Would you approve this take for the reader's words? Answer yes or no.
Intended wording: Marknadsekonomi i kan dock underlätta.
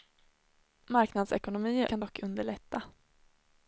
yes